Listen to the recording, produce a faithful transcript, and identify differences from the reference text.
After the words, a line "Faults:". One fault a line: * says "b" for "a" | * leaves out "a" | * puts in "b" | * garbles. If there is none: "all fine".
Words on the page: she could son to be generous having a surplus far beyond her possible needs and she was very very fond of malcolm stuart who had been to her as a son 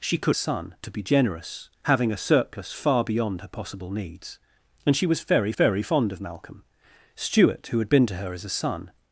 she could son to be generous having a surplus far beyond her possible needs and she was very very fond of malcolm stuart who had been to her as a son
Faults:
all fine